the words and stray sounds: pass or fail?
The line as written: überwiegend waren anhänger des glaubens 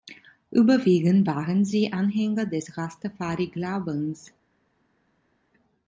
fail